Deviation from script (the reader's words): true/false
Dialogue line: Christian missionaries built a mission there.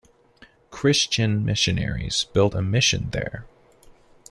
false